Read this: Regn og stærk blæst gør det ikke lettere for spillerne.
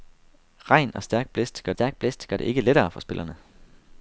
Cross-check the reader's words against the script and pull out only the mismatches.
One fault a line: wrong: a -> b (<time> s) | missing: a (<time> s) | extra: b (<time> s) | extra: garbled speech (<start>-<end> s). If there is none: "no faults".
extra: stærk blæst gør (1.7 s)